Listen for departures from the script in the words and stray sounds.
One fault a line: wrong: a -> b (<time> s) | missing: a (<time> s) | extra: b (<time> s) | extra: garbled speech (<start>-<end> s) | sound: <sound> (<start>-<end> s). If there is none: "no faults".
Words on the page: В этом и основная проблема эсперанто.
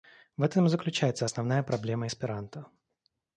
extra: заключается (0.7 s)